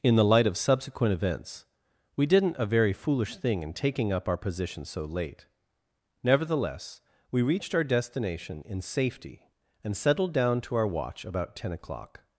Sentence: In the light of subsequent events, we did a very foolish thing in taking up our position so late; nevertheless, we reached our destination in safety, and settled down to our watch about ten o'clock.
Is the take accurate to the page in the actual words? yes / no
no